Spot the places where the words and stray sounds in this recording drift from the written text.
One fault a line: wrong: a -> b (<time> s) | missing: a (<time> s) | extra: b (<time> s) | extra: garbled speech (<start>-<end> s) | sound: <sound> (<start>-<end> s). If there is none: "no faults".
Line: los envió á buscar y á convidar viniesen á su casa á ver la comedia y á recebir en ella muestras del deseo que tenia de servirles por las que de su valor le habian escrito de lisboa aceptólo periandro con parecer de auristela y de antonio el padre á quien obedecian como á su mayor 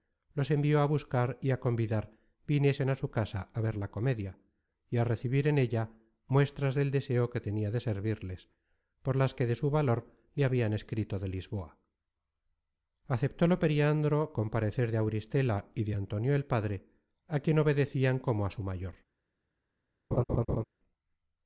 sound: laugh (20.1-20.6 s)